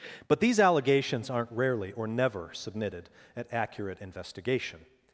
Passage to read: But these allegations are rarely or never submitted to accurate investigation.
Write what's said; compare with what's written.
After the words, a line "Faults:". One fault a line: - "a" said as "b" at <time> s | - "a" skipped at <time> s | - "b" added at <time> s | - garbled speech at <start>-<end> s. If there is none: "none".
But these allegations aren't rarely or never submitted at accurate investigation.
Faults:
- "are" said as "aren't" at 1.3 s
- "to" said as "at" at 3.4 s